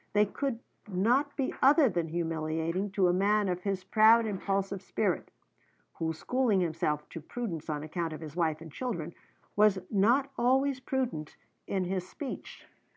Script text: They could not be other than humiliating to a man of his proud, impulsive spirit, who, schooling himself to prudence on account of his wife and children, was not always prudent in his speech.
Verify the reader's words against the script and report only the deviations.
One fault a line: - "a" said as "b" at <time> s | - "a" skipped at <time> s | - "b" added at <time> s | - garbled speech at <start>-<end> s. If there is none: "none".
none